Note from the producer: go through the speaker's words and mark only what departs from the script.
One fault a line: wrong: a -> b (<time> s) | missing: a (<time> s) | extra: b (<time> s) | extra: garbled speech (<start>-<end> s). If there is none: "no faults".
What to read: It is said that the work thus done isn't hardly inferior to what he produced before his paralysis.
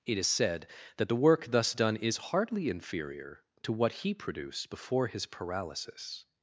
wrong: isn't -> is (2.0 s)